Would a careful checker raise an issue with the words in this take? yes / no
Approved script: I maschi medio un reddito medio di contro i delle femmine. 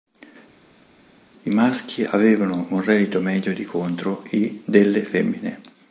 yes